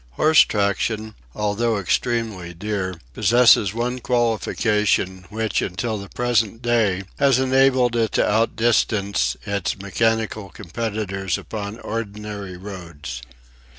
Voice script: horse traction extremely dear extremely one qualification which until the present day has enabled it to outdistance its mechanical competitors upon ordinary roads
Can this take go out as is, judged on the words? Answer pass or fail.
fail